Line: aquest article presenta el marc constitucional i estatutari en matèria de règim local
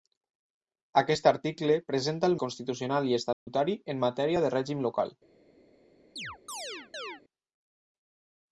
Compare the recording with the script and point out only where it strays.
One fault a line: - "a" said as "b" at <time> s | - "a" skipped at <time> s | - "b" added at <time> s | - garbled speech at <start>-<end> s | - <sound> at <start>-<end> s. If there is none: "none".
- "marc" skipped at 2.4 s
- dropout at 3.3-3.5 s
- chirp at 6.2-7.2 s